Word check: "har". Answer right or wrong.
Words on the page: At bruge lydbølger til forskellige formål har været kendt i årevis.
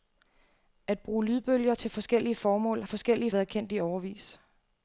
wrong